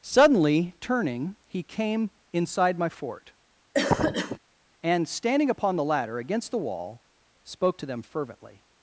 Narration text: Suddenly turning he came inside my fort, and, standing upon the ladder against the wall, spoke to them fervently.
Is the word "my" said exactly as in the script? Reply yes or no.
yes